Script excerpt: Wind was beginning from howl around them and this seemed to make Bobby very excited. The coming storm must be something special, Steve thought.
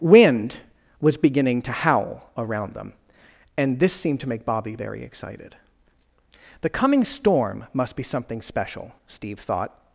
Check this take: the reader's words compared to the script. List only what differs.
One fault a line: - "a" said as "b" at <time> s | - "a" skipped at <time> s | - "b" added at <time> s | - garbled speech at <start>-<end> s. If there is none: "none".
- "from" said as "to" at 1.6 s